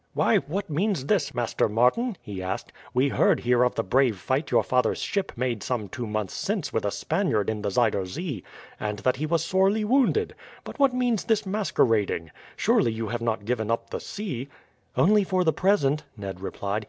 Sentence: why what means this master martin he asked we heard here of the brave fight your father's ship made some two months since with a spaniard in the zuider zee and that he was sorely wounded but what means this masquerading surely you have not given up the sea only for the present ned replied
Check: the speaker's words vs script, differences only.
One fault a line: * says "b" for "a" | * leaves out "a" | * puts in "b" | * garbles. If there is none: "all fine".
all fine